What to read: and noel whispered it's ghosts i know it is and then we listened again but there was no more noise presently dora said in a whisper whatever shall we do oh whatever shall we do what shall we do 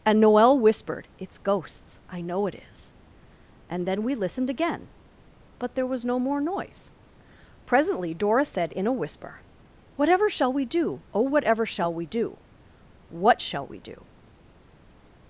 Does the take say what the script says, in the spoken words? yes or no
yes